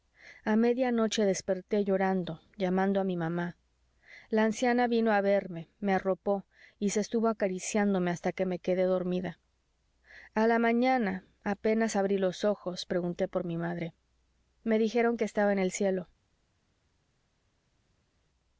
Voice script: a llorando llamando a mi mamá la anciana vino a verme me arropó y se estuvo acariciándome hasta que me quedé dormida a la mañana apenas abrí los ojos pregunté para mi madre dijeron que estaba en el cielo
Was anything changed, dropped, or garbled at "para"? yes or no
yes